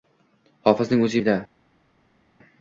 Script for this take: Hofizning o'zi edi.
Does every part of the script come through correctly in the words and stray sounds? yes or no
yes